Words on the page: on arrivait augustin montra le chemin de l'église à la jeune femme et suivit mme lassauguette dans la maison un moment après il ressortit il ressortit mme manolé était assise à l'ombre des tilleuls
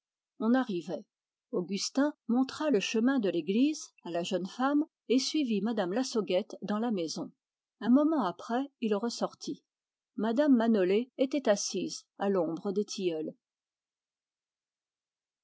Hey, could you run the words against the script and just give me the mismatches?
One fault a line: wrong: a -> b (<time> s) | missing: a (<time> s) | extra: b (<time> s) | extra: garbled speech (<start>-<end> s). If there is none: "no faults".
missing: il ressortit (9.6 s)